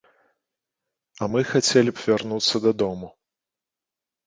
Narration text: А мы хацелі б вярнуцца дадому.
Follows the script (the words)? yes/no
yes